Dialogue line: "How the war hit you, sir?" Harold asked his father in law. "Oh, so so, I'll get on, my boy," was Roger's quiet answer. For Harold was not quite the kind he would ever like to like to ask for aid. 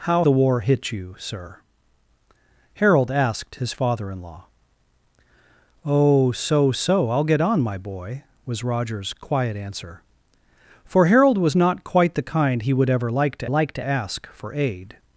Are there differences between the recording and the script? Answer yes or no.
no